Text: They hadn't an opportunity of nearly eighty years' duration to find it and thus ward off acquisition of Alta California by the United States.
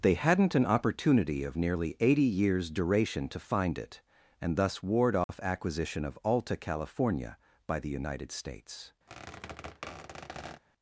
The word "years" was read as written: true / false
true